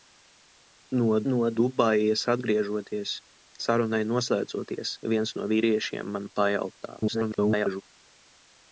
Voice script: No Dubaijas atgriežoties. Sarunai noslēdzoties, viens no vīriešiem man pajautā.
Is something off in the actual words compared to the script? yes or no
yes